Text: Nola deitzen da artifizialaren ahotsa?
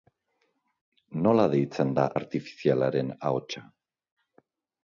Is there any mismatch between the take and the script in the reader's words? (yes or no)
no